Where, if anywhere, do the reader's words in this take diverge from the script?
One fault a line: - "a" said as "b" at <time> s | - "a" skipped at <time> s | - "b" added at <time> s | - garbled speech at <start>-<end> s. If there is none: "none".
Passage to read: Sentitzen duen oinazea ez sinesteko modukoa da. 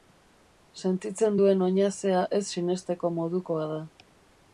none